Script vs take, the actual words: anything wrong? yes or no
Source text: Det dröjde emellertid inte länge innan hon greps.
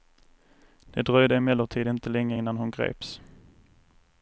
no